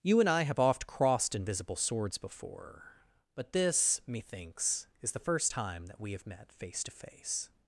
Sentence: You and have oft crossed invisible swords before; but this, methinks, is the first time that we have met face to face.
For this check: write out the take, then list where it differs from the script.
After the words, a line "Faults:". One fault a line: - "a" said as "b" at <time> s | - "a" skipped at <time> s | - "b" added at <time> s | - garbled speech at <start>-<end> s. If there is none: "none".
You and I have oft crossed invisible swords before; but this, methinks, is the first time that we have met face to face.
Faults:
- "I" added at 0.3 s